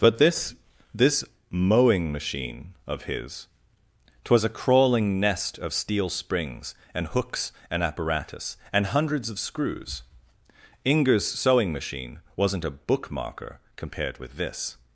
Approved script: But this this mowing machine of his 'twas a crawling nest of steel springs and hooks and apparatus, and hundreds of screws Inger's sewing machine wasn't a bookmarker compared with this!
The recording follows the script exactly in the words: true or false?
true